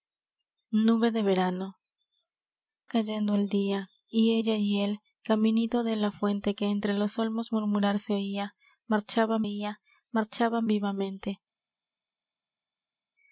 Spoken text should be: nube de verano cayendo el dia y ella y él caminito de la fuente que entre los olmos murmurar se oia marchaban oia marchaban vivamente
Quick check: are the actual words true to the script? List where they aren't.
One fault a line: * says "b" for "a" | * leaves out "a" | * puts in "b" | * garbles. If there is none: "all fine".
all fine